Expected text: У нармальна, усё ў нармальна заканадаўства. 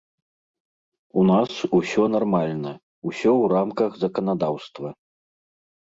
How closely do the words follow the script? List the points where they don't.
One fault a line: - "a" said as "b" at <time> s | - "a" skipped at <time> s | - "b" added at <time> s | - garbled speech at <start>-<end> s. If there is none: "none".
- "нас усё" added at 1.3 s
- "нармальна" said as "рамках" at 3.6 s